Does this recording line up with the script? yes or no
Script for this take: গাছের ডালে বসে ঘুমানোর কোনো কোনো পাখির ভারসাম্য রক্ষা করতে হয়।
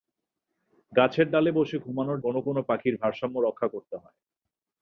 yes